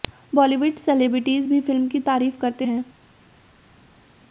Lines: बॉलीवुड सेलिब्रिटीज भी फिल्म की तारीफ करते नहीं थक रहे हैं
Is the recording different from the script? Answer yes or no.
yes